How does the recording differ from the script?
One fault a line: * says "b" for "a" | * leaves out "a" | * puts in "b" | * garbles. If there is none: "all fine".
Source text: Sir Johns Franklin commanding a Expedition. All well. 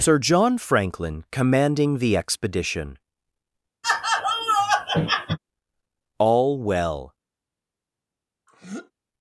* says "John" for "Johns"
* says "the" for "a"